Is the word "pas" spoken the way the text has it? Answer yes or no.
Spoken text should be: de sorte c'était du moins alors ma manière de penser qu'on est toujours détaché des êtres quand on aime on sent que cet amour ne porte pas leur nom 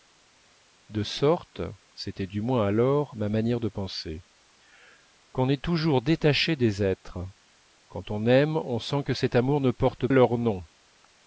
no